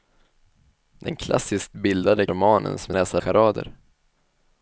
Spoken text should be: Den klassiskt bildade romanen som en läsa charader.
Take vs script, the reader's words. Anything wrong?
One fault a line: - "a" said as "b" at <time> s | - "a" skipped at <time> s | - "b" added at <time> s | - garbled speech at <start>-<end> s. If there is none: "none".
none